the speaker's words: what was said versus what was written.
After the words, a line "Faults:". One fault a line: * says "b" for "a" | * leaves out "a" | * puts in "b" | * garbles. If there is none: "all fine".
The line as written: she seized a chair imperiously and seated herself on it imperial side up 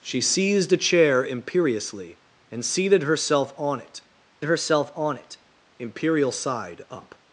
she seized a chair imperiously and seated herself on it herself on it imperial side up
Faults:
* puts in "herself on it"